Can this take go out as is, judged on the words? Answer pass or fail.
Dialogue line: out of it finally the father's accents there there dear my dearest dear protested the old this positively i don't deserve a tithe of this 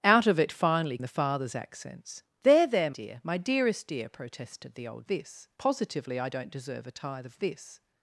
pass